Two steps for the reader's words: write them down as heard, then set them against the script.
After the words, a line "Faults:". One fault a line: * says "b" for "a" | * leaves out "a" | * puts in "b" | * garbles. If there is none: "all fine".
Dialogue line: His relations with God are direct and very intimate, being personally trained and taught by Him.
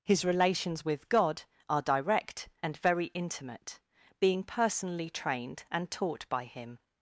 His relations with God are direct and very intimate, being personally trained and taught by Him.
Faults:
all fine